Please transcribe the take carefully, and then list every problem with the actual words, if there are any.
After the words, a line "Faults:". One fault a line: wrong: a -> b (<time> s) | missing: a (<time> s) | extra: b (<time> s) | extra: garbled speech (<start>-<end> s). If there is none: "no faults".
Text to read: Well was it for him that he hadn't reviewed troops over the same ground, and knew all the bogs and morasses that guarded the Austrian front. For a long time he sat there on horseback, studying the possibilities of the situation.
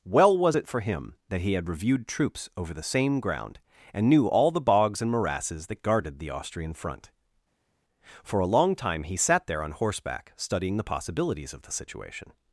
Well was it for him that he had reviewed troops over the same ground, and knew all the bogs and morasses that guarded the Austrian front. For a long time he sat there on horseback, studying the possibilities of the situation.
Faults:
wrong: hadn't -> had (1.5 s)